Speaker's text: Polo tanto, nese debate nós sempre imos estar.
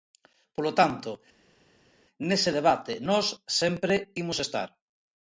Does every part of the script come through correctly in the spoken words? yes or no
yes